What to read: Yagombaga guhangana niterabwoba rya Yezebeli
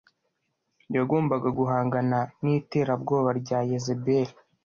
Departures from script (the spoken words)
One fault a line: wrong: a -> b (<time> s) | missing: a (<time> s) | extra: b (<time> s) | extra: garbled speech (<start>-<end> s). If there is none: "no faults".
no faults